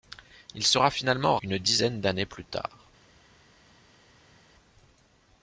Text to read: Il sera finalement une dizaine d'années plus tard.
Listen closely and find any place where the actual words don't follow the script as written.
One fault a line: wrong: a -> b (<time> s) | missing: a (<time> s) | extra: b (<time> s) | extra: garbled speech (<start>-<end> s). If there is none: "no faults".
no faults